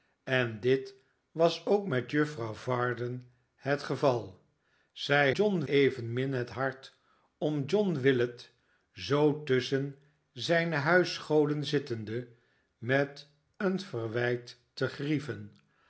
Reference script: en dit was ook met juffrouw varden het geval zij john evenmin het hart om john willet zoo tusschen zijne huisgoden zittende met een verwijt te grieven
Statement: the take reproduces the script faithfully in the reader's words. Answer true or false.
true